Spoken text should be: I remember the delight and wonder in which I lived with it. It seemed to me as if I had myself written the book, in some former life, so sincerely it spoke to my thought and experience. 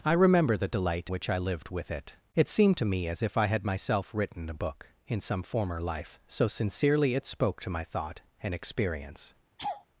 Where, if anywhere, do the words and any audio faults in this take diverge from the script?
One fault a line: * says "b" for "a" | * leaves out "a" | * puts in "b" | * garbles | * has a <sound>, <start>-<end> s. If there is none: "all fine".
* leaves out "and wonder in"
* has a laugh, 9.6-9.8 s